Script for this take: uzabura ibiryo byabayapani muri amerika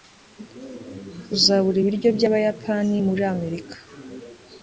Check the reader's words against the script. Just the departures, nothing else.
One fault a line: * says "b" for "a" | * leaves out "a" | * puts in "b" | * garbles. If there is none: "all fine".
all fine